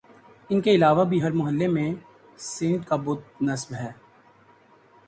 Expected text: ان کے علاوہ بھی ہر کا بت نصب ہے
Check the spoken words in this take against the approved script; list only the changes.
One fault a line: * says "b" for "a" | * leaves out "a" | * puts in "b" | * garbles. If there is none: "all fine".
* puts in "محلے میں سینٹ"